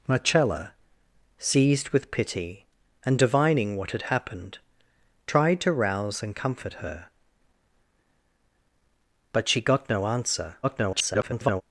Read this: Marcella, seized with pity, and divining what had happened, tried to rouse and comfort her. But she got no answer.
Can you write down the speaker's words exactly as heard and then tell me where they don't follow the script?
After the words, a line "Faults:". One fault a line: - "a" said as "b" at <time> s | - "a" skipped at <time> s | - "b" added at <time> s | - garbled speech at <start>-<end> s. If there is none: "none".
Marcella, seized with pity, and divining what had happened, tried to rouse and comfort her. But she got no answer. [garbled]
Faults:
- garbled speech at 10.6-11.6 s